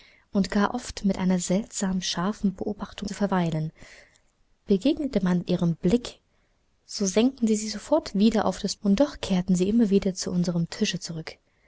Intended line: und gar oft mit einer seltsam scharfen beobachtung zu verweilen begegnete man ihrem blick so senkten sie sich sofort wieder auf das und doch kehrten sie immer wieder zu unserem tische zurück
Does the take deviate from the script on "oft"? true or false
false